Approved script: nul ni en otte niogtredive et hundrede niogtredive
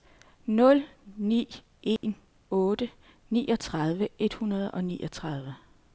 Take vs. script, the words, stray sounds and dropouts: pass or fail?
fail